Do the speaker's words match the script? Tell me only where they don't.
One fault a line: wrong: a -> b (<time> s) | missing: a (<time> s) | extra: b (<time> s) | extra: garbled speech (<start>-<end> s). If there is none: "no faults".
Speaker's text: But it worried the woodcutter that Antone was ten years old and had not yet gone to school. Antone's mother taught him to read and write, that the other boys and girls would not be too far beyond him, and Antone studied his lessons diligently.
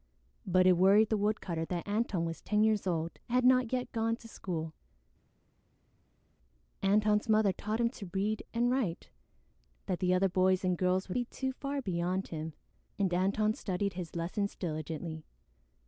missing: not (11.2 s)